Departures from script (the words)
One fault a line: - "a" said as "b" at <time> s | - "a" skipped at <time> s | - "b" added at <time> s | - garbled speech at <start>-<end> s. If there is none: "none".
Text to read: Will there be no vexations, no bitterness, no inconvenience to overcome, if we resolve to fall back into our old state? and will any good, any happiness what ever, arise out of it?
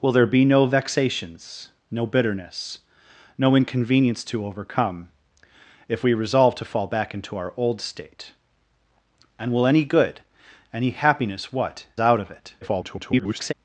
- "ever arise" skipped at 11.8 s
- garbled speech at 12.6-13.5 s